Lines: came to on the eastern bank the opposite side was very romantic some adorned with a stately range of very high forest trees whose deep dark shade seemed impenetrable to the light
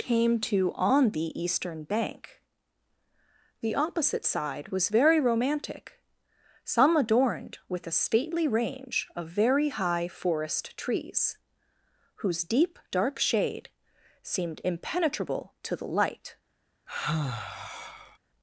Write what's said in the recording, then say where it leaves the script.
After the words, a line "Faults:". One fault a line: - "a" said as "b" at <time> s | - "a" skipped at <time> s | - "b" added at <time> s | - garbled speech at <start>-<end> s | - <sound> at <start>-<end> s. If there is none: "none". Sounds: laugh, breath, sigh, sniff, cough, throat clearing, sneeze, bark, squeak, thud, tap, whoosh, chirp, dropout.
came to on the eastern bank the opposite side was very romantic some adorned with a stately range of very high forest trees whose deep dark shade seemed impenetrable to the light
Faults:
- sigh at 16.9-18.2 s